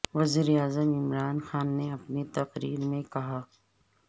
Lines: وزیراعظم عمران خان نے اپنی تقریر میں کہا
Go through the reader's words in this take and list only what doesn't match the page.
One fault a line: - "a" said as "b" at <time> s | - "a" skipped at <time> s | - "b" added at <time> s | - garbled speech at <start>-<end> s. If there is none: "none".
none